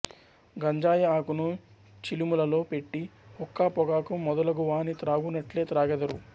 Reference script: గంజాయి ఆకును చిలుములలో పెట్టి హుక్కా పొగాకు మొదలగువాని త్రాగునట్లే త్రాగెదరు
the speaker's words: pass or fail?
pass